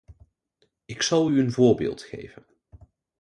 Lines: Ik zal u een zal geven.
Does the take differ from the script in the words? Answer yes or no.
yes